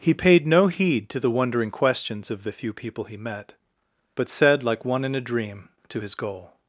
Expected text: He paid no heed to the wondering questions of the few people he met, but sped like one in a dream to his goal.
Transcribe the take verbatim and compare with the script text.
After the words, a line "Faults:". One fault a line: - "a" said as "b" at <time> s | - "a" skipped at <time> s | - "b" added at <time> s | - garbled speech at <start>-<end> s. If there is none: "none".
He paid no heed to the wondering questions of the few people he met, but said like one in a dream to his goal.
Faults:
- "sped" said as "said" at 4.3 s